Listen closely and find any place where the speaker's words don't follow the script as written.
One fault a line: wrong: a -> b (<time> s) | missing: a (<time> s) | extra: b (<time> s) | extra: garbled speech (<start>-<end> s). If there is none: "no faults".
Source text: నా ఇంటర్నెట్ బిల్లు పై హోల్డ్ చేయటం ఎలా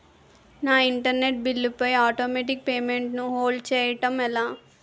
extra: ఆటోమేటిక్ పేమెంట్ ను (2.0 s)